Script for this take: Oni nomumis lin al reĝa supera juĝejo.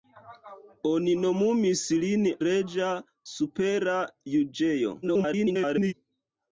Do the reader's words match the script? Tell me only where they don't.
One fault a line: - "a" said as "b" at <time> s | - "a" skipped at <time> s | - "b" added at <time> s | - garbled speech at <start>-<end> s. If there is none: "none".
- "al" skipped at 2.2 s
- garbled speech at 5.0-5.9 s